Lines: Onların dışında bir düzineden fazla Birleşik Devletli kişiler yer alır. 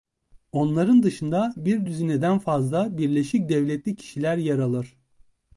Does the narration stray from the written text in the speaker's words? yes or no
no